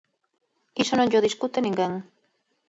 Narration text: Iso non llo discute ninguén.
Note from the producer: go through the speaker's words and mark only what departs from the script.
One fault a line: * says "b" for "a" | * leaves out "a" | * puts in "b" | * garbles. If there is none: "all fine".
all fine